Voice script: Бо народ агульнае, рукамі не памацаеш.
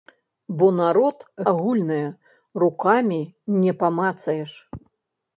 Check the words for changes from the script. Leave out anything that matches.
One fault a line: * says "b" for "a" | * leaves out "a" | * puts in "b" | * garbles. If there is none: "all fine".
all fine